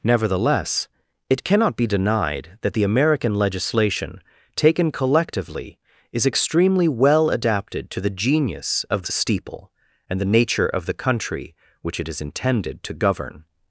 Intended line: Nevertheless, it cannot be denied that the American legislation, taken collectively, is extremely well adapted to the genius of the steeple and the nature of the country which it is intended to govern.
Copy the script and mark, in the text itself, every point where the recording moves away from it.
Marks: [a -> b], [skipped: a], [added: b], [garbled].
Nevertheless, it cannot be denied that the American legislation, taken collectively, is extremely well adapted to the genius of the steeple and the nature of the country which it is intended to govern.